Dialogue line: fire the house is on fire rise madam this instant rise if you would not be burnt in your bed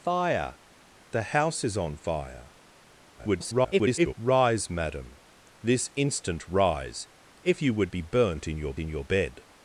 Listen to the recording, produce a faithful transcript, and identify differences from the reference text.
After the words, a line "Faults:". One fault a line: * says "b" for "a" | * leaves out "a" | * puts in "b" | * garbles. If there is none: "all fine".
fire the house is on fire [garbled] rise madam this instant rise if you would be burnt in your in your bed
Faults:
* garbles
* leaves out "not"
* puts in "in your"